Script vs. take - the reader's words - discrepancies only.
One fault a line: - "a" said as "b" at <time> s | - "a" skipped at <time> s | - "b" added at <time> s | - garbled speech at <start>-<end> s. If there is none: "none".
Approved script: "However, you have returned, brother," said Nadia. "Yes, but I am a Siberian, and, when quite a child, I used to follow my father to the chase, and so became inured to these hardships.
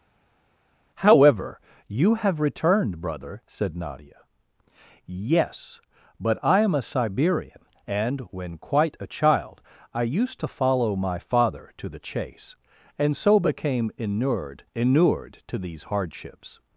- "inured" added at 14.8 s